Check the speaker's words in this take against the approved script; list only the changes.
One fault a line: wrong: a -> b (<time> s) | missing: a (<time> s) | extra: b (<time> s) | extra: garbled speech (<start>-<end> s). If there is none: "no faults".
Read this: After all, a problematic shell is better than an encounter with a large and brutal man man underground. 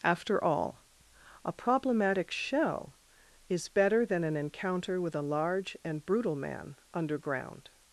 missing: man (6.8 s)